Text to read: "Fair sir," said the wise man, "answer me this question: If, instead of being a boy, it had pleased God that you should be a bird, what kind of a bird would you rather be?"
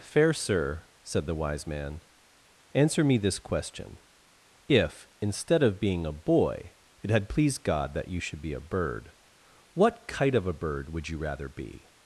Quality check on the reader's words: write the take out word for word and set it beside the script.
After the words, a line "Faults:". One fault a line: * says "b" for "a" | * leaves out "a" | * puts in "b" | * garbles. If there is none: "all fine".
"Fair sir," said the wise man, "answer me this question: If, instead of being a boy, it had pleased God that you should be a bird, what kite of a bird would you rather be?"
Faults:
* says "kite" for "kind"